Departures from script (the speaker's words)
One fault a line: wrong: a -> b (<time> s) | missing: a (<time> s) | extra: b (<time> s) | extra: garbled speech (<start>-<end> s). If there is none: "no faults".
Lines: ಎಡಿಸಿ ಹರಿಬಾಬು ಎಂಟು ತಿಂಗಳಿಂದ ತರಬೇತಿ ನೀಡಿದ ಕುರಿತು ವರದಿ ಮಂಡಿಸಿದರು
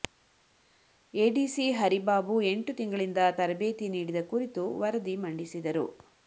no faults